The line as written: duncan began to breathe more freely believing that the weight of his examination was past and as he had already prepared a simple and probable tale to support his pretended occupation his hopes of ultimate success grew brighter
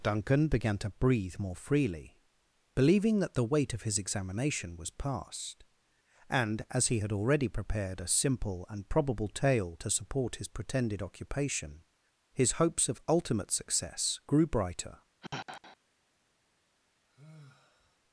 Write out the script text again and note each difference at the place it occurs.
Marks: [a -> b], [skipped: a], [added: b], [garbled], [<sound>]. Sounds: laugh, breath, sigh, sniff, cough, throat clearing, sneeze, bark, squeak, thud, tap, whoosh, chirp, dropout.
duncan began to breathe more freely believing that the weight of his examination was past and as he had already prepared a simple and probable tale to support his pretended occupation his hopes of ultimate success grew brighter [sigh] [sigh]